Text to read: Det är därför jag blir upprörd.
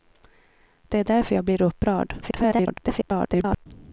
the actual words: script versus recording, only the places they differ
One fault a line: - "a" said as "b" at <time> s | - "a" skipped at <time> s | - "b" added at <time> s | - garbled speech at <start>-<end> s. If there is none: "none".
- garbled speech at 2.2-3.7 s